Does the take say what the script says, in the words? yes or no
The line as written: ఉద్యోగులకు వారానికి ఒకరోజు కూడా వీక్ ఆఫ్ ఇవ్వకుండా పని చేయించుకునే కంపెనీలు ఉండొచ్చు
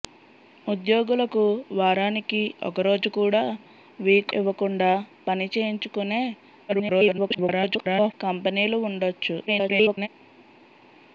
no